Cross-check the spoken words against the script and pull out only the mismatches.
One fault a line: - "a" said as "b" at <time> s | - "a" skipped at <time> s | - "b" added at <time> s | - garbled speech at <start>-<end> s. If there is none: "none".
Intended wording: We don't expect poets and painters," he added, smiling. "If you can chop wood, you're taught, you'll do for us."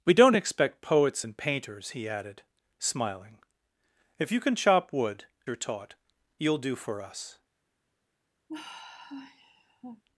none